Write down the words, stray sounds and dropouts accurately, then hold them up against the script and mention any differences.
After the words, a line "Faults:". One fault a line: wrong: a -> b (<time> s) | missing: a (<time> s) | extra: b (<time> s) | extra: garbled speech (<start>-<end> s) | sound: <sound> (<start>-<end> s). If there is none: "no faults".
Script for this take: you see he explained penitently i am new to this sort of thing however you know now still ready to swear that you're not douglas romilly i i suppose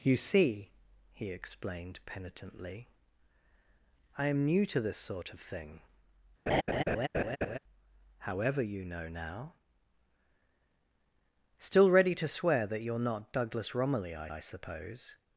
you see he explained penitently i am new to this sort of thing however you know now still ready to swear that you're not douglas romilly i i suppose
Faults:
sound: laugh (6.5-7.6 s)